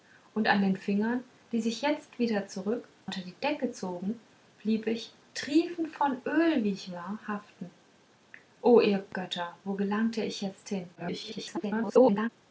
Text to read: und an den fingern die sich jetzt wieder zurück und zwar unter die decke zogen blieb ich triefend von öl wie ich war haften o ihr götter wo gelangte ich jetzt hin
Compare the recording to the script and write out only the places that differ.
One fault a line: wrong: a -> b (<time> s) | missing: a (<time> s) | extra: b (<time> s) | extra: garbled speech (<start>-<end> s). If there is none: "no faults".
missing: und zwar (2.9 s)
extra: garbled speech (10.9-12.3 s)